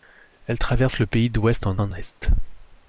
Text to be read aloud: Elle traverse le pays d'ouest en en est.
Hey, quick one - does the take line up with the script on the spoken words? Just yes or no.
yes